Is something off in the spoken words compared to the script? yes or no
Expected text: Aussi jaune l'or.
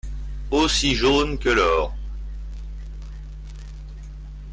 yes